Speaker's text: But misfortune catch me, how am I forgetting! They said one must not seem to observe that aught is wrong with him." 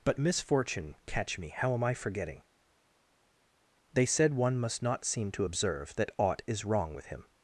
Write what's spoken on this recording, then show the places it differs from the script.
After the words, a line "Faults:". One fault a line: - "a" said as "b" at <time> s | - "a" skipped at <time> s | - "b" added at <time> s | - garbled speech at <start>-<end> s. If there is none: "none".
But misfortune catch me, how am I forgetting! They said one must not seem to observe that aught is wrong with him."
Faults:
none